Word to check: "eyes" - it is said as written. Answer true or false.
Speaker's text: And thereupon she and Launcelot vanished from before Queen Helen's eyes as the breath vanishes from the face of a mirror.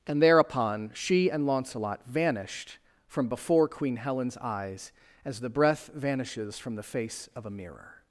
true